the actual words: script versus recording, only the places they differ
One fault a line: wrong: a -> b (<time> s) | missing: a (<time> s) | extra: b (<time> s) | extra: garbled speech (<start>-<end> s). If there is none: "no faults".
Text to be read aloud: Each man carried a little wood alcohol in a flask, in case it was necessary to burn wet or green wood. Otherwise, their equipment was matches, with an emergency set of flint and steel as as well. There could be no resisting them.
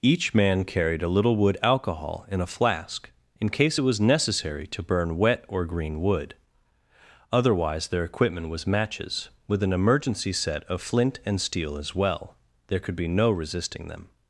missing: as (11.9 s)